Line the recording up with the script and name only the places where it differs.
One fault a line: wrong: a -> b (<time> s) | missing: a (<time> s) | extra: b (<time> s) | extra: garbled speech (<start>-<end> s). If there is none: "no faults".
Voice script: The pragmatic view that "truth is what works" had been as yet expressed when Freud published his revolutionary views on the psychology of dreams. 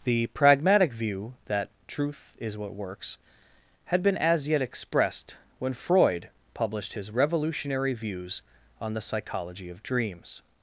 no faults